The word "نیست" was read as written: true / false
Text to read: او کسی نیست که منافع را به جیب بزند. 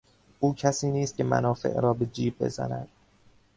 true